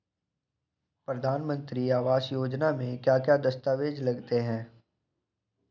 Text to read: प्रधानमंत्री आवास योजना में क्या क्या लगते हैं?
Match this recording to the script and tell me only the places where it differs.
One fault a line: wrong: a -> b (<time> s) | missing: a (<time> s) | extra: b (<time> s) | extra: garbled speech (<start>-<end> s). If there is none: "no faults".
extra: दस्तावेज (3.4 s)